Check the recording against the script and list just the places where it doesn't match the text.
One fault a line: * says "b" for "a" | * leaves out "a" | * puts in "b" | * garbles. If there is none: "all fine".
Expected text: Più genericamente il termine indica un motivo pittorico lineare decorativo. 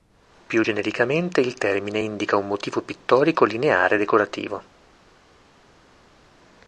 all fine